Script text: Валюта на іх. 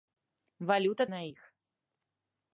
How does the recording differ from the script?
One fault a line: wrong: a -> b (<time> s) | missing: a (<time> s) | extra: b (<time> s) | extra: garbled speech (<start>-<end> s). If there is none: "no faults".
no faults